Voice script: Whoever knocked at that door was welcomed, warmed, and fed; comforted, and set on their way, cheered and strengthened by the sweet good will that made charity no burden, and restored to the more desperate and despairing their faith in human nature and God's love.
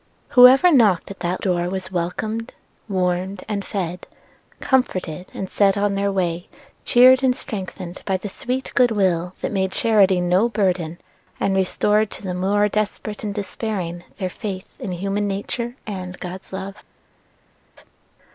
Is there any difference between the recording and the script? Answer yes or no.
no